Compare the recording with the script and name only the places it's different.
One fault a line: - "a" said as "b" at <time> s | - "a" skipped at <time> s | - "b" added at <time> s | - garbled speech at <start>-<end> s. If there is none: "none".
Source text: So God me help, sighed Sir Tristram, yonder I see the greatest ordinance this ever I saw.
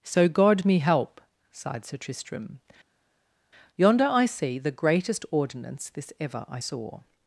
none